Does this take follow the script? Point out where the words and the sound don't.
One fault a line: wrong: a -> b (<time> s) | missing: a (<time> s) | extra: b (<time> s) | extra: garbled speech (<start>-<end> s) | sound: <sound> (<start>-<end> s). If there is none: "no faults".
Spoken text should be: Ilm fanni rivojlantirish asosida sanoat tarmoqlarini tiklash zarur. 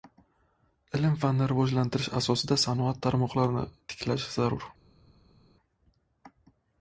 no faults